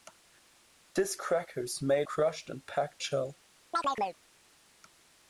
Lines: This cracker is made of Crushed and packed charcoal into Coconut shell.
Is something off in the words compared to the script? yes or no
yes